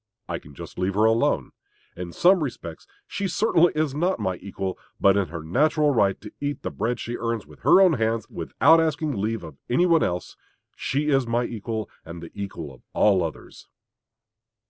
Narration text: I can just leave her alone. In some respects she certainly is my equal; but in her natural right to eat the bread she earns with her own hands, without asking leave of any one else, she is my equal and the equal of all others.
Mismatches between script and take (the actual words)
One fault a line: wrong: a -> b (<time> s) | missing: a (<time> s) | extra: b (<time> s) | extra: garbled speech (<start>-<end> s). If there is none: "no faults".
extra: not (3.9 s)